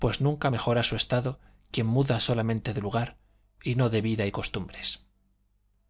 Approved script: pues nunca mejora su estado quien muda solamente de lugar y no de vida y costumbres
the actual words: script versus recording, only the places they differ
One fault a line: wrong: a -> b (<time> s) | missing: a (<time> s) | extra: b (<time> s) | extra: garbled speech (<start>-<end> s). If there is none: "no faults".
no faults